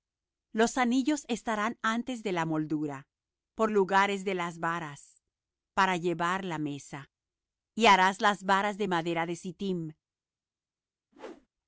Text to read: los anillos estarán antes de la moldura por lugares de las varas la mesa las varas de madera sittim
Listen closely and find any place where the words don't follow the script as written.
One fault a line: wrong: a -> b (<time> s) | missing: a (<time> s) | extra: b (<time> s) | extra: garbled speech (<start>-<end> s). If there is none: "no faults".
extra: para llevar (5.7 s)
extra: y harás (7.8 s)
extra: de (9.3 s)